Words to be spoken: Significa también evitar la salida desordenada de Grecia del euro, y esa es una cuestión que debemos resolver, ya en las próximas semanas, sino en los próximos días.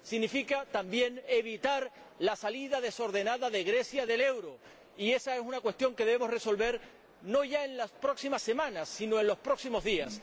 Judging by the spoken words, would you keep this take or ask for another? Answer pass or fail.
fail